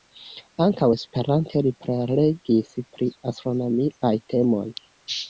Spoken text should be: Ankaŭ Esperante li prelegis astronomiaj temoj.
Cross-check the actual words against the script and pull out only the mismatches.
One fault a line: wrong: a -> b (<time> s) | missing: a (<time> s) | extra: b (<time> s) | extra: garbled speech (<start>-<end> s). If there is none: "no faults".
extra: pri (2.9 s)